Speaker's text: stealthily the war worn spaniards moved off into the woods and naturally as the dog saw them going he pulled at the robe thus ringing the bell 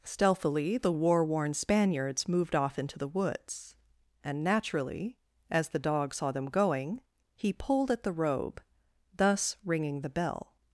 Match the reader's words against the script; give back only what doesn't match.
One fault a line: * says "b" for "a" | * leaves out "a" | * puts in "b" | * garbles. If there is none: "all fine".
all fine